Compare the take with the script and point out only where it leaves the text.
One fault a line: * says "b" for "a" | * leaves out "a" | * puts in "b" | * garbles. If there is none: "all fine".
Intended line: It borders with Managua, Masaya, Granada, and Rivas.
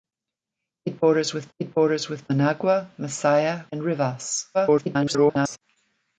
* puts in "it borders with"
* leaves out "Granada"
* garbles